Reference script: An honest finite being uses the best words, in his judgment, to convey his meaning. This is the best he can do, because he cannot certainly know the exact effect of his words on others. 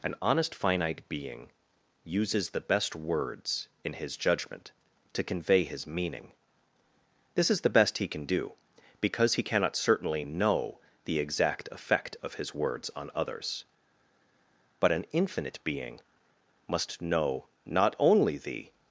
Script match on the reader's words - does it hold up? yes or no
no